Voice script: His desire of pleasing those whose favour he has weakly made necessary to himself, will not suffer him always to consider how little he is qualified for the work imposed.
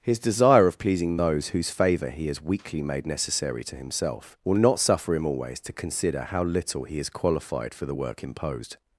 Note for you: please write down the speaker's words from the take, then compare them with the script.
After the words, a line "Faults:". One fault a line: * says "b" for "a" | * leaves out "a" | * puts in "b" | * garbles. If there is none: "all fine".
His desire of pleasing those whose favour he has weakly made necessary to himself, will not suffer him always to consider how little he is qualified for the work imposed.
Faults:
all fine